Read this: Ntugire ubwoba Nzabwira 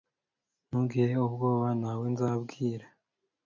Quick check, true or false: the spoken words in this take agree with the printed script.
false